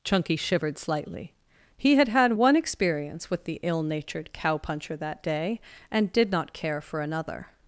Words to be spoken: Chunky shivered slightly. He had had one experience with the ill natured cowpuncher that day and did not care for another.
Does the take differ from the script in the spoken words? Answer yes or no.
no